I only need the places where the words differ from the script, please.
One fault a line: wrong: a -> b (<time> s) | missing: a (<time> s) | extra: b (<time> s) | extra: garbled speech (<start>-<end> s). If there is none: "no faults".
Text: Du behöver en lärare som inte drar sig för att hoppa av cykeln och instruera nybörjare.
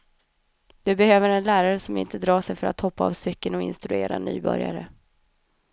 no faults